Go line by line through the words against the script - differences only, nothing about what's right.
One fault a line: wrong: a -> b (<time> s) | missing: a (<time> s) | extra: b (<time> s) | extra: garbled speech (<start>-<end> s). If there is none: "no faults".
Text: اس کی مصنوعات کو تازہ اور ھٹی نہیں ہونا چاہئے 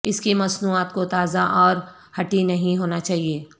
no faults